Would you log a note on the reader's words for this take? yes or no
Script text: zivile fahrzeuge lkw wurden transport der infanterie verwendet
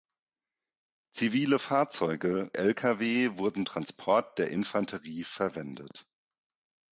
no